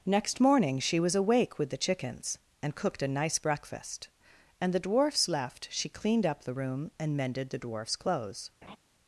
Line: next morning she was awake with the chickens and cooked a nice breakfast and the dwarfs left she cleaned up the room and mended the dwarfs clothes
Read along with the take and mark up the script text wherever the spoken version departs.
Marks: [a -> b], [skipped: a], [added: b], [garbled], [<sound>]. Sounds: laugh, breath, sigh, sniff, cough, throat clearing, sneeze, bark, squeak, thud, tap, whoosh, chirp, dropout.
next morning she was awake with the chickens and cooked a nice breakfast and the dwarfs left she cleaned up the room and mended the dwarfs clothes [laugh]